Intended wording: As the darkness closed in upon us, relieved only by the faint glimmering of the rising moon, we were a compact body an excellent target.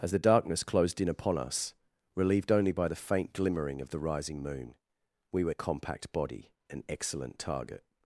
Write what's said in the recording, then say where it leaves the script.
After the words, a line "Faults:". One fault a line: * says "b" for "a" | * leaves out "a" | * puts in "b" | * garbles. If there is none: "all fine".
As the darkness closed in upon us, relieved only by the faint glimmering of the rising moon, we were a compact body an excellent target.
Faults:
all fine